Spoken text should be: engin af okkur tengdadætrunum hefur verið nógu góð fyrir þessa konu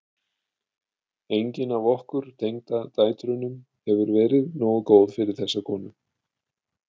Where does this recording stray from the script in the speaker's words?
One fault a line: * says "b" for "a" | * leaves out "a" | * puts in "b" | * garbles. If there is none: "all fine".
all fine